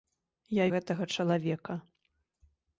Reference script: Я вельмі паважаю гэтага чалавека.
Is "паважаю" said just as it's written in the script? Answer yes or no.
no